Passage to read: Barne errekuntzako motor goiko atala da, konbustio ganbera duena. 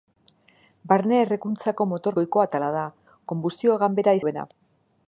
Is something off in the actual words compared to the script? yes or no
no